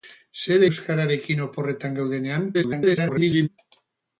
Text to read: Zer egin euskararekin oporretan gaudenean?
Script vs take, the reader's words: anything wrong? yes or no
yes